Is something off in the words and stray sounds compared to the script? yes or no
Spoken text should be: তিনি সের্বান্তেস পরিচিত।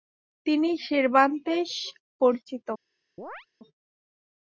yes